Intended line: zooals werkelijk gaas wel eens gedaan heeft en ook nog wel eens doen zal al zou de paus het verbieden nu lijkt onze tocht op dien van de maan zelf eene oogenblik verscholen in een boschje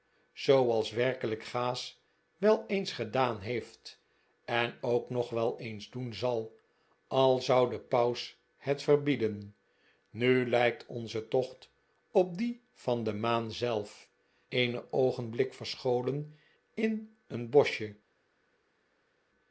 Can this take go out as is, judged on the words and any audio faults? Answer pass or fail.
pass